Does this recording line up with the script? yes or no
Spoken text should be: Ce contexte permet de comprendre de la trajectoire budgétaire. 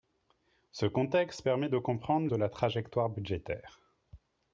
yes